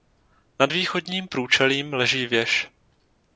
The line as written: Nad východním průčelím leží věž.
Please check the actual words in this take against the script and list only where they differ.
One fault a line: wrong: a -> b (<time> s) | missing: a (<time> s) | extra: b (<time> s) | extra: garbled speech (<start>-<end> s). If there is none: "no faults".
no faults